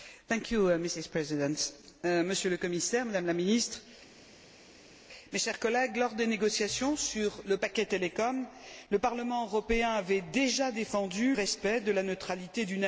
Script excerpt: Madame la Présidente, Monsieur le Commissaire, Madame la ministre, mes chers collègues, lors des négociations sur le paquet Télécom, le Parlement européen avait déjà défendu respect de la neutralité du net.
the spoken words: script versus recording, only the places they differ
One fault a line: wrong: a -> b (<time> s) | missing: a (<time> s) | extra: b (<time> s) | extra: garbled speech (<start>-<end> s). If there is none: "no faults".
no faults